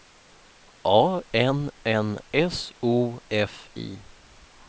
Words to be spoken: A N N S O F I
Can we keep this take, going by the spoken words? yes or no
yes